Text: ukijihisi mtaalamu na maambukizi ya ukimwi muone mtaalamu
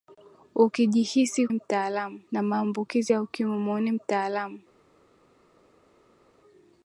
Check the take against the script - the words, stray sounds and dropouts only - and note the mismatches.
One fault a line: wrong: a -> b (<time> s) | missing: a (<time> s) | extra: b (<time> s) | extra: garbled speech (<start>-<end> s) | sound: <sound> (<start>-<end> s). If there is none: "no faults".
no faults